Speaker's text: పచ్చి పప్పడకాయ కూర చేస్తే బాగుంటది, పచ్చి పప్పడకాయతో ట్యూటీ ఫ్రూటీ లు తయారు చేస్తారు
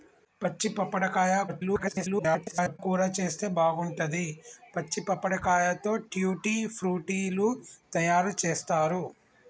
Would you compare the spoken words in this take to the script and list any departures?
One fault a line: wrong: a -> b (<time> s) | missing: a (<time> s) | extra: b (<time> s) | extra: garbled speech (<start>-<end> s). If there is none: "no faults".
extra: garbled speech (1.5-2.8 s)